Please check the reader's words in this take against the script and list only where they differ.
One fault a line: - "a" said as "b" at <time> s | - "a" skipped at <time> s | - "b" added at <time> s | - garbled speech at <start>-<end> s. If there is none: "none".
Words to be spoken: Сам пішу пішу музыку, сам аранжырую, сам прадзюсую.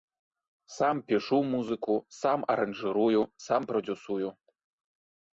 - "пішу" skipped at 1.4 s